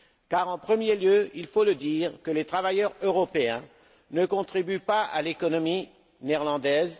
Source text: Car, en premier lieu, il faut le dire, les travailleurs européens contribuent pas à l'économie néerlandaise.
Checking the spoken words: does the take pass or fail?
fail